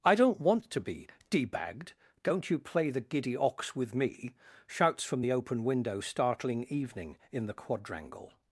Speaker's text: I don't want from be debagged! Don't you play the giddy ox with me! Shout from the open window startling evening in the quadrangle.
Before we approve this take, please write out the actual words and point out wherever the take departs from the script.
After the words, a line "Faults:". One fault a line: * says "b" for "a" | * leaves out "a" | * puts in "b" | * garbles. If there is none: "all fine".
I don't want to be debagged! Don't you play the giddy ox with me! Shouts from the open window startling evening in the quadrangle.
Faults:
* says "to" for "from"
* says "Shouts" for "Shout"